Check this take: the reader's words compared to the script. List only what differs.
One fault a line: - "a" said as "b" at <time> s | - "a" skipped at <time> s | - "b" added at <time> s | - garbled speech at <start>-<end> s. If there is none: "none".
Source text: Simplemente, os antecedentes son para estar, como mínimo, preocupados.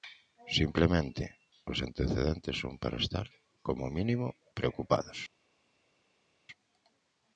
none